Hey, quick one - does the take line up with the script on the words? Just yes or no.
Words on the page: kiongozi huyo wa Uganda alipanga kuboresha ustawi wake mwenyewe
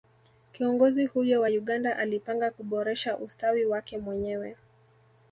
yes